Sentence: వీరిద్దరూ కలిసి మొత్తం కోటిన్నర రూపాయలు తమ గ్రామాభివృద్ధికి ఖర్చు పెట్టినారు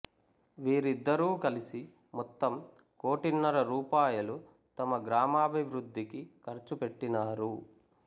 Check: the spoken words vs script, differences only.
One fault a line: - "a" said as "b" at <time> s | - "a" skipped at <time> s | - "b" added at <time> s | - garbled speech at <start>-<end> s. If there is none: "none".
none